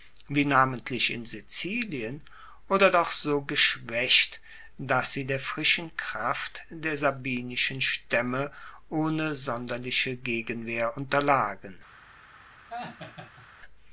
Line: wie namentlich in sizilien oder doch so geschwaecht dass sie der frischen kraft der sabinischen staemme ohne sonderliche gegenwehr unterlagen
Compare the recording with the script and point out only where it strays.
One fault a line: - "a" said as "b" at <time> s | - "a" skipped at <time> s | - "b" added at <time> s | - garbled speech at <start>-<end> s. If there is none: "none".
none